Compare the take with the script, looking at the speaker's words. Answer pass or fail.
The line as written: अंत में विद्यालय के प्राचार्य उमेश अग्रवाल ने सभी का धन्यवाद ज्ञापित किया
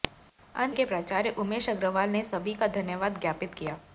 fail